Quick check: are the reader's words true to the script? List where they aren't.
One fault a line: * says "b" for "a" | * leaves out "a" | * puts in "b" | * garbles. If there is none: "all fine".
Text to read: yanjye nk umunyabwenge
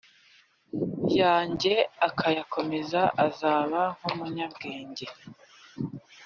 * puts in "akayakomeza azaba"